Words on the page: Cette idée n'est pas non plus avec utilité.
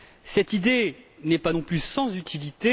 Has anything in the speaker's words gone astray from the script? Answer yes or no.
yes